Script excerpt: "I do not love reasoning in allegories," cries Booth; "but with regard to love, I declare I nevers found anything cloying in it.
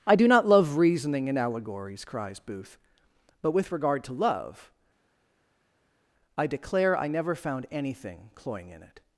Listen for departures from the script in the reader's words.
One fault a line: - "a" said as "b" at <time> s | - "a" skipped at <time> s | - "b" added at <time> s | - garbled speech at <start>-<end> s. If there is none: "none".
- "nevers" said as "never" at 7.1 s